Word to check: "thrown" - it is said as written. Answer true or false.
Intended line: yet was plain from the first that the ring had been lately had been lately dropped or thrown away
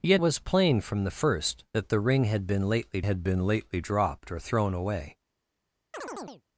true